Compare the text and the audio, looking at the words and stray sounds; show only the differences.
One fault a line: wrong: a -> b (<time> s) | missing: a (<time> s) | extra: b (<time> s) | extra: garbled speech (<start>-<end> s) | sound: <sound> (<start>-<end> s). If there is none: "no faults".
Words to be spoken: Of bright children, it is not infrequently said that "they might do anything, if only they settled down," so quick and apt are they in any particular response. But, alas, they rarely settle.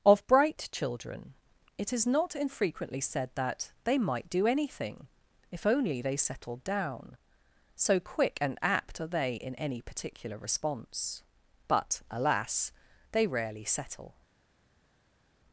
no faults